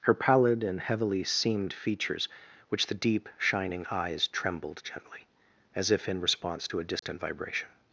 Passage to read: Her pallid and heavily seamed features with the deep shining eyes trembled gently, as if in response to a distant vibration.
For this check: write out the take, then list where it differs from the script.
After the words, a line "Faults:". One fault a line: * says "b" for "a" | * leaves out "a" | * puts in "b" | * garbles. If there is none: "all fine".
Her pallid and heavily seamed features which the deep shining eyes trembled gently, as if in response to a distant vibration.
Faults:
* says "which" for "with"